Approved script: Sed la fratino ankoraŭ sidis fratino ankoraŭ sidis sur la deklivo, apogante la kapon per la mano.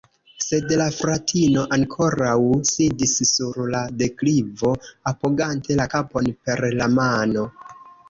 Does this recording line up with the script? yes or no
no